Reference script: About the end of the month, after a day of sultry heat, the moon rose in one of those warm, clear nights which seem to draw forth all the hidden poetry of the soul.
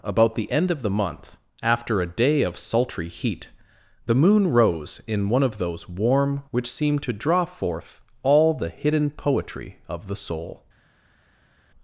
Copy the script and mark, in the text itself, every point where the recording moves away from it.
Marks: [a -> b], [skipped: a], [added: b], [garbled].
About the end of the month, after a day of sultry heat, the moon rose in one of those warm, [skipped: clear nights] which seem to draw forth all the hidden poetry of the soul.